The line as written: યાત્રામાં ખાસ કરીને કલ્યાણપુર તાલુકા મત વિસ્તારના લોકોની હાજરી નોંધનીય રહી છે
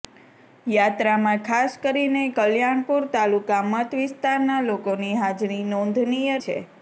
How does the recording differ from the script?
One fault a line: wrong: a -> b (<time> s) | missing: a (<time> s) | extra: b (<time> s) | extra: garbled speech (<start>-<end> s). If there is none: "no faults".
missing: રહી (6.4 s)